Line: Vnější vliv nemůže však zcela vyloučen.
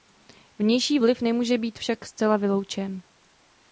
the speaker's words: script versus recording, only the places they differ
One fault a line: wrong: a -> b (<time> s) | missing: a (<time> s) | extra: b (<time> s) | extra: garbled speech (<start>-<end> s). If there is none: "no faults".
extra: být (1.6 s)